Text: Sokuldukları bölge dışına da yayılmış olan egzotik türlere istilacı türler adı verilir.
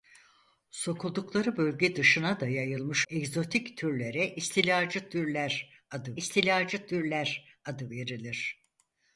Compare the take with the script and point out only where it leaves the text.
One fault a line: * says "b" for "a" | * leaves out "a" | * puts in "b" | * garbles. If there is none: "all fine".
* leaves out "olan"
* puts in "istilacı türler adı"